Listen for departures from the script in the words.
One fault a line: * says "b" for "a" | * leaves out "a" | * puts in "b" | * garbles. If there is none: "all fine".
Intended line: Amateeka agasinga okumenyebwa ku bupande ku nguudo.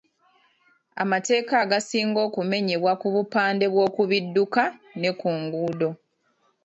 * puts in "bw'oku bidduka ne"